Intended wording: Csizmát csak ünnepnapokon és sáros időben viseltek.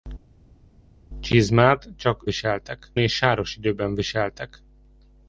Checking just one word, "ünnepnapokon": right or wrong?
wrong